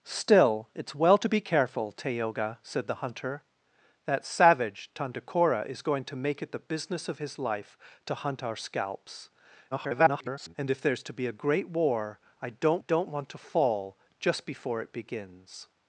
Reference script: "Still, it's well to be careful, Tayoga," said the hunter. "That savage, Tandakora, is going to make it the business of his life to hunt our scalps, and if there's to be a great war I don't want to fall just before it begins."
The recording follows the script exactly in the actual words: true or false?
false